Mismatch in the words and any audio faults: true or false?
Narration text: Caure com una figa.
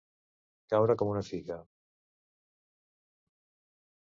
false